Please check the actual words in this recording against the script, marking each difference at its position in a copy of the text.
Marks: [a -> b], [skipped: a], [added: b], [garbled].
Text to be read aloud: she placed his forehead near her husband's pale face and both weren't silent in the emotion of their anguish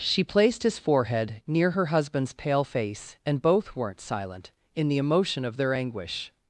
she placed his forehead near her husband's pale face and both weren't silent in the emotion of their anguish